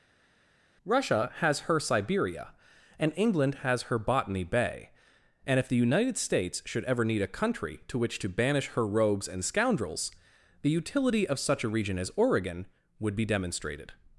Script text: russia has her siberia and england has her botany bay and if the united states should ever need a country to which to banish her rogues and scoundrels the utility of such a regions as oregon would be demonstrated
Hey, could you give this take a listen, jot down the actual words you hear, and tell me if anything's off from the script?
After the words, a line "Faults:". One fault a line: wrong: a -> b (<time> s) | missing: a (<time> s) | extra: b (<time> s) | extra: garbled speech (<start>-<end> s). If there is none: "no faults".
russia has her siberia and england has her botany bay and if the united states should ever need a country to which to banish her rogues and scoundrels the utility of such a region as oregon would be demonstrated
Faults:
wrong: regions -> region (11.7 s)